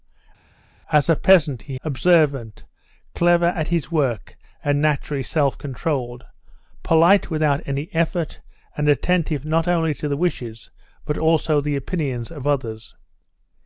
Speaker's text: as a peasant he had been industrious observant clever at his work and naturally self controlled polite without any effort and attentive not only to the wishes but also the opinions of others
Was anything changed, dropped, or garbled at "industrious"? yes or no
yes